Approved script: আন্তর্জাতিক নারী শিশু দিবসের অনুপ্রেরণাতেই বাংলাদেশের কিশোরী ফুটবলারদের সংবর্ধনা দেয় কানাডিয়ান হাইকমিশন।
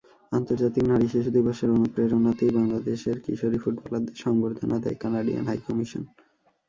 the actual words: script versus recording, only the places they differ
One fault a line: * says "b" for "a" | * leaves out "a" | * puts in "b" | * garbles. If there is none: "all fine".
all fine